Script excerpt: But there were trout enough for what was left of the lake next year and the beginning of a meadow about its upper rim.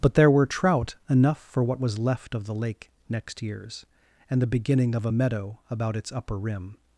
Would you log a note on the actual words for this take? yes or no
yes